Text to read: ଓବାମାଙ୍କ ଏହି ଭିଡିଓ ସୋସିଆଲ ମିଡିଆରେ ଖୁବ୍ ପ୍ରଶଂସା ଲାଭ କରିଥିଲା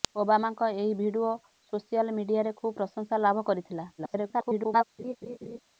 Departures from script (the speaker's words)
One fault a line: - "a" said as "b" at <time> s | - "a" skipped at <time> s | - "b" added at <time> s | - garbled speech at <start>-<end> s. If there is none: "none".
- garbled speech at 4.0-4.8 s